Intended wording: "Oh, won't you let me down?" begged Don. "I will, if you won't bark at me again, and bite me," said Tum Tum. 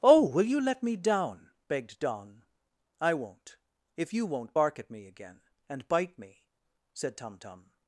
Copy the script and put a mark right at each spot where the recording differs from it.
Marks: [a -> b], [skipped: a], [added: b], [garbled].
"Oh, [won't -> will] you let me down?" begged Don. "I [will, -> won't] if you won't bark at me again, and bite me," said Tum Tum.